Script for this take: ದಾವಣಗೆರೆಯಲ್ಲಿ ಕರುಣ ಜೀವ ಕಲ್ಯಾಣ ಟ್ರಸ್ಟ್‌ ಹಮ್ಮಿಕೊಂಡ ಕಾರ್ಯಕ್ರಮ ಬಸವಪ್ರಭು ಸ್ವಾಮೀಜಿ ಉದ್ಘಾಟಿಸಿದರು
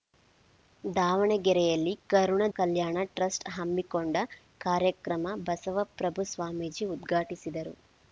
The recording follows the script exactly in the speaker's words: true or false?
false